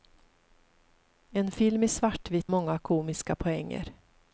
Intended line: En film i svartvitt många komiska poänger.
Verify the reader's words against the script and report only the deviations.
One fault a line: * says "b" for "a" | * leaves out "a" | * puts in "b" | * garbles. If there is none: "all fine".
all fine